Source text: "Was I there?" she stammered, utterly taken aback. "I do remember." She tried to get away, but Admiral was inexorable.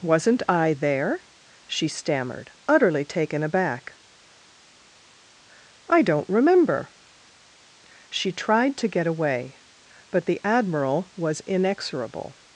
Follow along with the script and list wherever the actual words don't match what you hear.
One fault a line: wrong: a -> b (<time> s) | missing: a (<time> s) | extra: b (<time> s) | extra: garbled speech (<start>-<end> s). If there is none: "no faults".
wrong: Was -> Wasn't (0.0 s)
wrong: do -> don't (6.0 s)
extra: the (10.2 s)